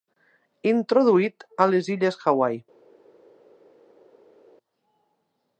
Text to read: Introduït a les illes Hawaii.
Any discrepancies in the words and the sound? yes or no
no